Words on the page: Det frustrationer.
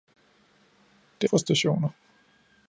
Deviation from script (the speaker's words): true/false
false